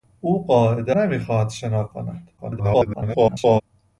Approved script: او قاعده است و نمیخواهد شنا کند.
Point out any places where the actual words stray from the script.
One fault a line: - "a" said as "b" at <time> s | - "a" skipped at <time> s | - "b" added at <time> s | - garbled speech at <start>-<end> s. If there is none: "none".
- "است و" skipped at 1.0 s
- garbled speech at 2.4-3.6 s